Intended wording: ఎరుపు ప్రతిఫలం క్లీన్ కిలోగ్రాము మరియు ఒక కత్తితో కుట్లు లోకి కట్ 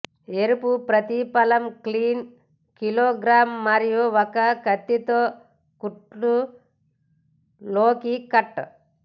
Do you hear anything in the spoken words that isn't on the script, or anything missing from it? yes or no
no